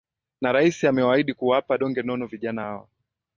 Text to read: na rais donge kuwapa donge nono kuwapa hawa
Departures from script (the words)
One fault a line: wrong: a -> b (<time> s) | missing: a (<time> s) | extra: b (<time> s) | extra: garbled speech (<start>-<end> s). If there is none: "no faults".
wrong: donge -> amewaahidi (0.8 s)
wrong: kuwapa -> vijana (2.3 s)